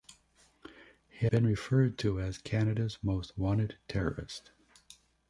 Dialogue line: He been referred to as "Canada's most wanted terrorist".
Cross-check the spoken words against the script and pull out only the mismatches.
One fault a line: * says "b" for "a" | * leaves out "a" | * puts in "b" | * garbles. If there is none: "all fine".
all fine